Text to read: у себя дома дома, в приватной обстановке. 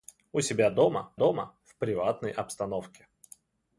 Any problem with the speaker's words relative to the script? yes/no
no